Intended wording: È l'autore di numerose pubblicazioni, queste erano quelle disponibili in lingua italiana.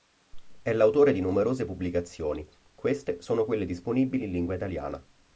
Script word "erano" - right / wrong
wrong